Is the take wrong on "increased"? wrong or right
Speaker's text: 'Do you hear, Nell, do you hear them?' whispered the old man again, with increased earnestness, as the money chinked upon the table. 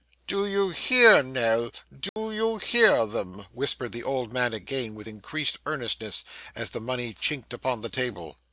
right